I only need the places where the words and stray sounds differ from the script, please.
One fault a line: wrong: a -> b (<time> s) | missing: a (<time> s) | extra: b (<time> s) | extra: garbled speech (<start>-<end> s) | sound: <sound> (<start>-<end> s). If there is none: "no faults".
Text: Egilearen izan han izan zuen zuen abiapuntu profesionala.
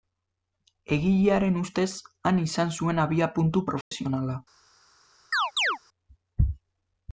wrong: izan -> ustez (1.6 s)
missing: zuen (3.0 s)
sound: dropout (3.8-3.9 s)
sound: chirp (5.3-5.8 s)